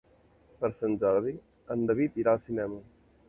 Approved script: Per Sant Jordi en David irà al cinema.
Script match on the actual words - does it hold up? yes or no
yes